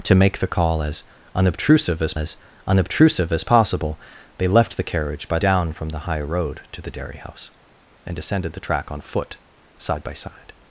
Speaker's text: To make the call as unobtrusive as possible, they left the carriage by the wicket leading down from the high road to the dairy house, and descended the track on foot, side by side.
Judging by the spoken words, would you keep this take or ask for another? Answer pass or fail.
fail